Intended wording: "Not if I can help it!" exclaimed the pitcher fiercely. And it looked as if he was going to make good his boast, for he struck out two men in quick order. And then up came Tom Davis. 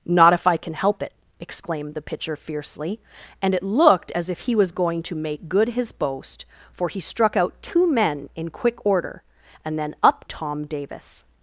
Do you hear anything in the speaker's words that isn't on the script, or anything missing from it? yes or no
yes